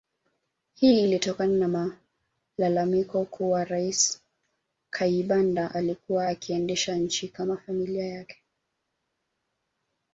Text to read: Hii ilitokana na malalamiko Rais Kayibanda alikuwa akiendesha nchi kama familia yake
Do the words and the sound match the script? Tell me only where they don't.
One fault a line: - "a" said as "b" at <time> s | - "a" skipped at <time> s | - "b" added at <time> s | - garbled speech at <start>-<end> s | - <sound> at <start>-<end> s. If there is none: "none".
- "kuwa" added at 3.3 s